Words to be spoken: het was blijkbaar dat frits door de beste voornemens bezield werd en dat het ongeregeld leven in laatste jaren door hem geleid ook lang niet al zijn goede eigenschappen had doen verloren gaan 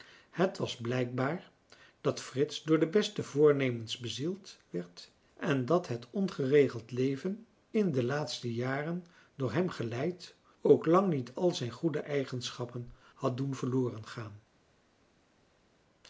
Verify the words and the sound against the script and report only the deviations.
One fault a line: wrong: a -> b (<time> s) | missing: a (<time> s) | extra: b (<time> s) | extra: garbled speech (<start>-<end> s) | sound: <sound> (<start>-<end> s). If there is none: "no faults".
extra: de (7.9 s)